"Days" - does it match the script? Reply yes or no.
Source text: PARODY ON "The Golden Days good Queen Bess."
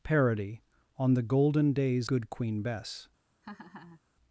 yes